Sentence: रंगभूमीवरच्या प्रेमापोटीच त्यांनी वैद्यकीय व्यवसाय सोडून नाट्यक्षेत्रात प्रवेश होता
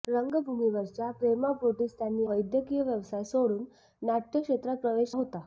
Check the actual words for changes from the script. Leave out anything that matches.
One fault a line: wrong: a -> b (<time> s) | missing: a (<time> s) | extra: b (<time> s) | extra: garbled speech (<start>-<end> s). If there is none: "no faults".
no faults